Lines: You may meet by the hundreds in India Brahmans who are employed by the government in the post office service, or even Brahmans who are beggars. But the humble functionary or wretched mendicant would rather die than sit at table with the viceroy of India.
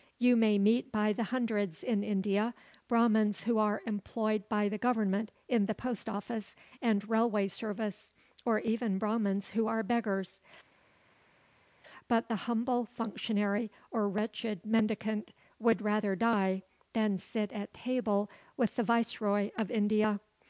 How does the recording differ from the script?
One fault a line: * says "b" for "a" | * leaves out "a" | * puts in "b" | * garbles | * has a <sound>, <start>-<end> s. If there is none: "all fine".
* puts in "and railway"